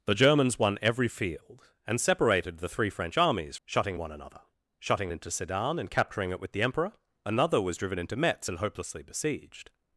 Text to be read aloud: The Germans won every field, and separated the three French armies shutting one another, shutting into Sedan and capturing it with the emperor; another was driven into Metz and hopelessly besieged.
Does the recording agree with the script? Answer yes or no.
yes